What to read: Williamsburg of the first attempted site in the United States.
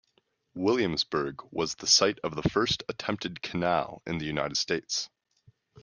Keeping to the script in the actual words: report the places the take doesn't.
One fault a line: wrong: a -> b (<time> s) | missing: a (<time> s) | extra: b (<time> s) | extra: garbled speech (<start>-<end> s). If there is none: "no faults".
extra: was the site (1.5 s)
wrong: site -> canal (3.4 s)